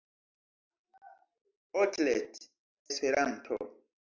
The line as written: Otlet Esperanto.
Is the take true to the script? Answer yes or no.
yes